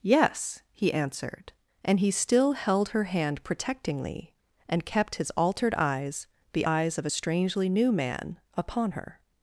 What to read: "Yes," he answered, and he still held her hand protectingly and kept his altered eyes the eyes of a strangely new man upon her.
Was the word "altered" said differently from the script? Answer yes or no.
no